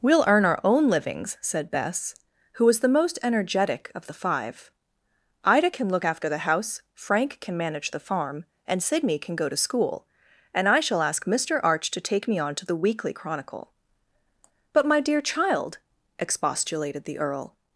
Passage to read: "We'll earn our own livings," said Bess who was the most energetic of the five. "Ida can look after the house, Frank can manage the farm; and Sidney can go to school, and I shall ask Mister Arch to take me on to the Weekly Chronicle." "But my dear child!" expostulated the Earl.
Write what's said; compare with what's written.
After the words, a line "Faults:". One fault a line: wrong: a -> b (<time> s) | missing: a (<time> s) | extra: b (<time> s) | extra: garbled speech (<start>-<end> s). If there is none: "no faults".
"We'll earn our own livings," said Bess who was the most energetic of the five. "Ida can look after the house, Frank can manage the farm; and Sidney can go to school, and I shall ask Mister Arch to take me on to the Weekly Chronicle." "But my dear child!" expostulated the Earl.
Faults:
no faults